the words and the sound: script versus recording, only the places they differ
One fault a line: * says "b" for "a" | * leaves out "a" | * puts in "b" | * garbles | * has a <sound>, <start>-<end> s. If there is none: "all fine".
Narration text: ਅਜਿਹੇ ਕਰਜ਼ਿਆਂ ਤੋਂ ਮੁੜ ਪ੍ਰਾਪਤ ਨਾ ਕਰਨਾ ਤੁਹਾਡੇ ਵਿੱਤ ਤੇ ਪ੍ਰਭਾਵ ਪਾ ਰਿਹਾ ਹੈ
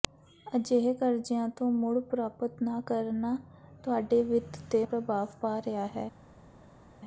all fine